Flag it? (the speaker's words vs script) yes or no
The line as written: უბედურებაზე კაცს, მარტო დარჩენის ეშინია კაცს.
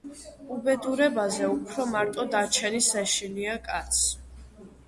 yes